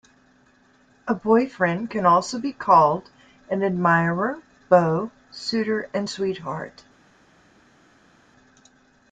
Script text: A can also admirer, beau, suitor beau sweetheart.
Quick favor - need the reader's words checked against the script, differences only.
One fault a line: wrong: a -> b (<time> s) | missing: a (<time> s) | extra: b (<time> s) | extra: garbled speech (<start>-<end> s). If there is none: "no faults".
extra: boyfriend (1.1 s)
extra: be called an (2.4 s)
wrong: beau -> and (5.9 s)